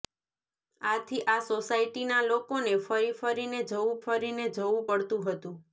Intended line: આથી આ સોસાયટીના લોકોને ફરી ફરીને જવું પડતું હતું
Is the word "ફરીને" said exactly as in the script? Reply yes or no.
yes